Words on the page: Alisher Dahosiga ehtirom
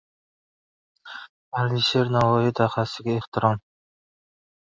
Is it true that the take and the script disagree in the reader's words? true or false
true